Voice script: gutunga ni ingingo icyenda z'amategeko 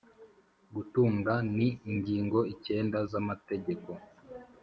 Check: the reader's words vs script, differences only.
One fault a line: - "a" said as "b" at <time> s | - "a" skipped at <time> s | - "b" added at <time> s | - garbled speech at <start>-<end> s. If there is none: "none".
none